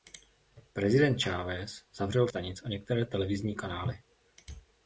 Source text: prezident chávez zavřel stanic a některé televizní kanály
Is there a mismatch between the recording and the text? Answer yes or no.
no